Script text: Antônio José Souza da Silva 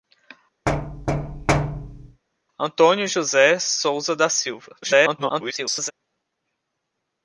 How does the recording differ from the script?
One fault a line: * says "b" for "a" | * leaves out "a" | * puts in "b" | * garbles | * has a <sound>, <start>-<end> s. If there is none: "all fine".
* has a thud, 0.7-2.2 s
* garbles